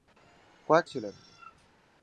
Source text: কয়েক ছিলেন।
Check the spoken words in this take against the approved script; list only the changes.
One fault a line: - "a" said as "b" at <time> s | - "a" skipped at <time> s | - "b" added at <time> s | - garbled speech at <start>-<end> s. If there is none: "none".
none